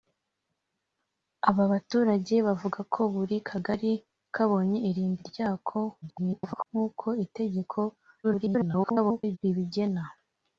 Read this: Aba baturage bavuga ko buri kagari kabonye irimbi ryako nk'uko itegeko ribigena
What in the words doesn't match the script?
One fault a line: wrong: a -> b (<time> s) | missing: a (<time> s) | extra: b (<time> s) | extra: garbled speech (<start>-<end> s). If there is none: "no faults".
extra: garbled speech (6.0-6.7 s)
extra: garbled speech (8.2-9.4 s)